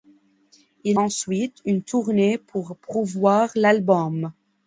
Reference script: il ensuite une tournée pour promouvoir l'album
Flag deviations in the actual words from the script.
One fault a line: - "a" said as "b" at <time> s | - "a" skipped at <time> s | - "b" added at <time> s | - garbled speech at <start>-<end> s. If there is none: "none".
none